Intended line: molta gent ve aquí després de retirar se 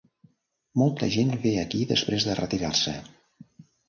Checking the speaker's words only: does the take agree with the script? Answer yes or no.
yes